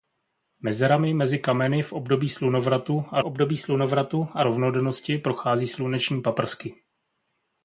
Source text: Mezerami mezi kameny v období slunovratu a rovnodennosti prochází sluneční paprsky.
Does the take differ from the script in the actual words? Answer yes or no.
yes